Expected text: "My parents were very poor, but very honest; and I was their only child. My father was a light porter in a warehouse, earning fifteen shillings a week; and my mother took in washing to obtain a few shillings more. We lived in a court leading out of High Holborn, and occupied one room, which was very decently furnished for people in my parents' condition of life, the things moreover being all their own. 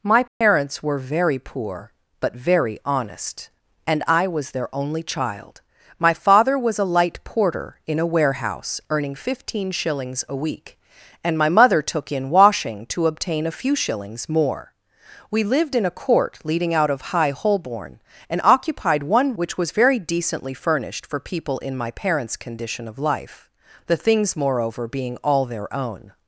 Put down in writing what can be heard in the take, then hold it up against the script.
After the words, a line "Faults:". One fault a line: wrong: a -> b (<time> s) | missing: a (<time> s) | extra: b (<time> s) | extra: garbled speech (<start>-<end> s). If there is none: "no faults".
"My parents were very poor, but very honest; and I was their only child. My father was a light porter in a warehouse, earning fifteen shillings a week; and my mother took in washing to obtain a few shillings more. We lived in a court leading out of High Holborn, and occupied one which was very decently furnished for people in my parents' condition of life, the things moreover being all their own.
Faults:
missing: room (19.4 s)